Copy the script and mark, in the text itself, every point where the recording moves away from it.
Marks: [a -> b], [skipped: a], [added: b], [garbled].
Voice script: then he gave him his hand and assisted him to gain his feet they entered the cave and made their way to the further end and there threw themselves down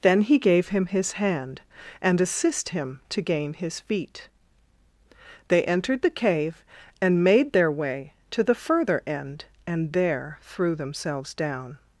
then he gave him his hand and [assisted -> assist] him to gain his feet they entered the cave and made their way to the further end and there threw themselves down